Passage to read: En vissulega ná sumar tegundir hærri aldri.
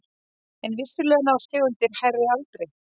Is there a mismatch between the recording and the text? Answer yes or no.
yes